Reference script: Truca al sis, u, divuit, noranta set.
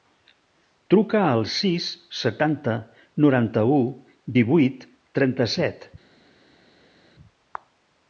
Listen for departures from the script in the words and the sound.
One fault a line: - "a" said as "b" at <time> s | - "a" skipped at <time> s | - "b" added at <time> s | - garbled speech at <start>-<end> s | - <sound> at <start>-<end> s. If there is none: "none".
- "setanta noranta" added at 2.2 s
- "noranta" said as "trenta" at 5.2 s